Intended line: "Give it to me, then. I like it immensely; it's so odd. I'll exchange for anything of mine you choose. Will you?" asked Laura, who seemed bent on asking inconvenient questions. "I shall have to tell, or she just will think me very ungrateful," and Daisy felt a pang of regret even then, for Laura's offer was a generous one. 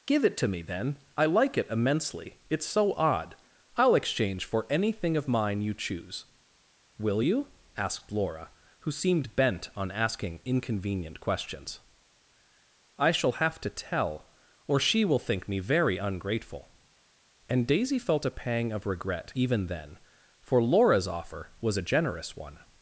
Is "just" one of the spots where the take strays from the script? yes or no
yes